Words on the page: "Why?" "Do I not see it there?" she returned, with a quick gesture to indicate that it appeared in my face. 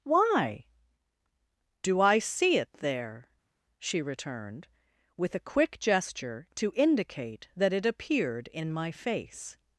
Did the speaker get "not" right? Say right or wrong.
wrong